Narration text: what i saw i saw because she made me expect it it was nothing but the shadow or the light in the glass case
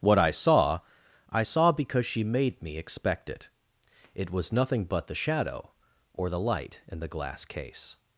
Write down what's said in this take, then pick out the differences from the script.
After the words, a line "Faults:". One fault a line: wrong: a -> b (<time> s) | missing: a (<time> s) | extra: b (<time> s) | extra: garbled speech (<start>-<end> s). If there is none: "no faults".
what i saw i saw because she made me expect it it was nothing but the shadow or the light in the glass case
Faults:
no faults